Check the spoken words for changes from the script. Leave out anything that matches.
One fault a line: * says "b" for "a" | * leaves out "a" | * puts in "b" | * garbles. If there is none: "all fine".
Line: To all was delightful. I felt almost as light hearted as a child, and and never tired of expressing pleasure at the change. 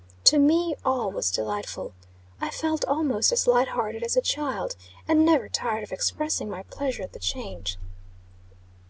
* puts in "me"
* leaves out "and"
* puts in "my"